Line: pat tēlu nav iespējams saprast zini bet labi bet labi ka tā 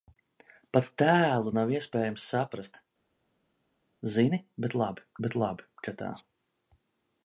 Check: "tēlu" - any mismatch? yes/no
no